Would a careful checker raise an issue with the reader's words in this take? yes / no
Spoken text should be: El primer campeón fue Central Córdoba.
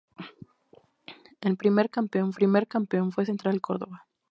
yes